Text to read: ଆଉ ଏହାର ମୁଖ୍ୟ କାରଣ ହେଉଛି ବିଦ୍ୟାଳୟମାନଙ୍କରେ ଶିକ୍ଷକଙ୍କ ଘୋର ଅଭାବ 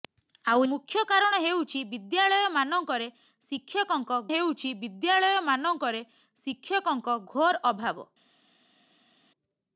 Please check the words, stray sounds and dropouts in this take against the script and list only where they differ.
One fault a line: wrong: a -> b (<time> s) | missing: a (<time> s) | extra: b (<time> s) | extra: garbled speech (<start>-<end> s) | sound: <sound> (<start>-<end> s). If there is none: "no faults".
missing: ଏହାର (0.6 s)
extra: ହେଉଛି ବିଦ୍ୟାଳୟମାନଙ୍କରେ ଶିକ୍ଷକଙ୍କ (4.3 s)